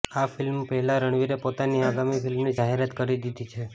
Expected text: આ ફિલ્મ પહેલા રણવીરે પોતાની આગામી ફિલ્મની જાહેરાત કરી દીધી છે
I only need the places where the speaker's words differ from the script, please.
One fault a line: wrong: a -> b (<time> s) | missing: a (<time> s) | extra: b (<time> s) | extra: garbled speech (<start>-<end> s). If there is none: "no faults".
no faults